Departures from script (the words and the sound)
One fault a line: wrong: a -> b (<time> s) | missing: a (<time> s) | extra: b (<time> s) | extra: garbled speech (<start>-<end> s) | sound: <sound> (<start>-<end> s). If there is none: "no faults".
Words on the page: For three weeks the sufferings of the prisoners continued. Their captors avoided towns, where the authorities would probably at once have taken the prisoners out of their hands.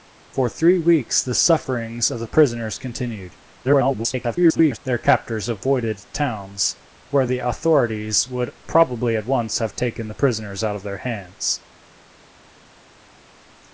extra: garbled speech (3.6-4.8 s)